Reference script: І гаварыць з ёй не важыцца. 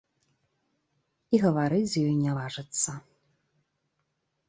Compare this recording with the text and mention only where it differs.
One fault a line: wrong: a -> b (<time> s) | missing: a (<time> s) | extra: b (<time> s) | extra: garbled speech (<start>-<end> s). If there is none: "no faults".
no faults